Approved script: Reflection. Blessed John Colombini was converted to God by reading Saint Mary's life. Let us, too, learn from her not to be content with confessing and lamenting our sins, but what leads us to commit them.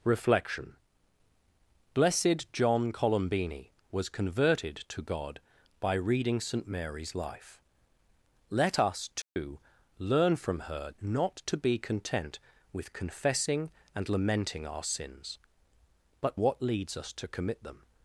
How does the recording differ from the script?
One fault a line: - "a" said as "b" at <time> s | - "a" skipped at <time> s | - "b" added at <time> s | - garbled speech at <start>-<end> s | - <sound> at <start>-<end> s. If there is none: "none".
- dropout at 9.2-9.4 s